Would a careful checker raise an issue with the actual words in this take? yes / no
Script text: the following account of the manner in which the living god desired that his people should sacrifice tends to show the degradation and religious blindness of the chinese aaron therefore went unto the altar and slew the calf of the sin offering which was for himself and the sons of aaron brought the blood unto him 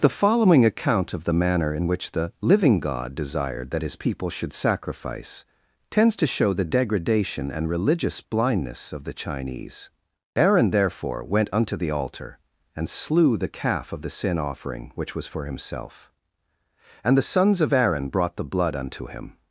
no